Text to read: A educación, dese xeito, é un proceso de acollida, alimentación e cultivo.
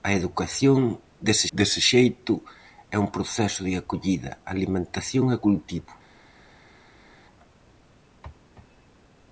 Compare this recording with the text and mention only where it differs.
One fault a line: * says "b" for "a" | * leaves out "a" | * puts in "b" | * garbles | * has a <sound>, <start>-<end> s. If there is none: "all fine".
* puts in "dese"